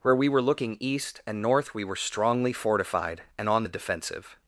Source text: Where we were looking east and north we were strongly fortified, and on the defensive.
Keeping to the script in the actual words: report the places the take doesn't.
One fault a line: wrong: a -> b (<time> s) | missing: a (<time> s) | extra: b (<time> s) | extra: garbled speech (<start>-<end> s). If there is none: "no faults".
no faults